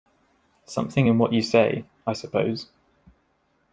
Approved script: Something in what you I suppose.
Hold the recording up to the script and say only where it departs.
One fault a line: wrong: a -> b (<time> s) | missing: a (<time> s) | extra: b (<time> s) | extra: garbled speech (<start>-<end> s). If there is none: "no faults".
extra: say (1.4 s)